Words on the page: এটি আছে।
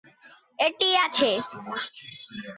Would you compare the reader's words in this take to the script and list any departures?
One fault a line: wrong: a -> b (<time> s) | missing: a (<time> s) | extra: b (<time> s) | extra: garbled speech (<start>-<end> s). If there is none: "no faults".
no faults